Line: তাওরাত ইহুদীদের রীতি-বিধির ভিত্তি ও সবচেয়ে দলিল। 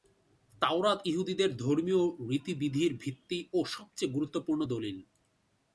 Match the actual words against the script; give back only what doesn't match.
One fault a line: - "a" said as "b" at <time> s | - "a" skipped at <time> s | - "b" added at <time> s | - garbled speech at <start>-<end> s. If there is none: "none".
- "ধর্মীয়" added at 1.6 s
- "গুরুত্বপূর্ণ" added at 4.1 s